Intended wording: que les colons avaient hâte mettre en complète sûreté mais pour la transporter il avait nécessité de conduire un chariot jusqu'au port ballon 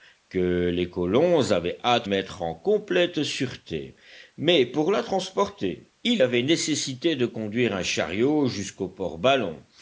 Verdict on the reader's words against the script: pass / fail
pass